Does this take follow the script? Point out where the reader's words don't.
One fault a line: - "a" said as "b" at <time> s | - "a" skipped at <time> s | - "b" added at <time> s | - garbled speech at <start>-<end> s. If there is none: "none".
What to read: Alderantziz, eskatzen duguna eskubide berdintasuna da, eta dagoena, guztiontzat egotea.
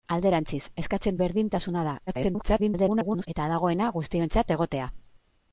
- "duguna eskubide" skipped at 1.2 s
- garbled speech at 2.1-3.3 s